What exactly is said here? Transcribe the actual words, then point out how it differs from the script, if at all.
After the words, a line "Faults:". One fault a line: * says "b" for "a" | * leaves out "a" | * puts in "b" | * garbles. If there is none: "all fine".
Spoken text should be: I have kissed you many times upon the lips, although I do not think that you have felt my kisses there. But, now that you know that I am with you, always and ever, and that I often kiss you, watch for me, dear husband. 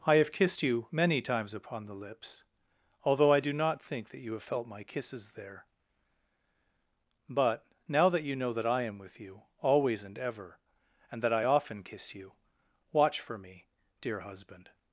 I have kissed you many times upon the lips, although I do not think that you have felt my kisses there. But, now that you know that I am with you, always and ever, and that I often kiss you, watch for me, dear husband.
Faults:
all fine